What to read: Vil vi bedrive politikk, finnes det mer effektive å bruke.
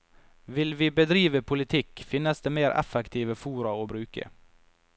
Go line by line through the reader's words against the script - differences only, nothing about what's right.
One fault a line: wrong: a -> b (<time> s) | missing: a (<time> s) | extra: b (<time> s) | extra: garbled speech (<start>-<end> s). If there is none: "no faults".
extra: fora (3.4 s)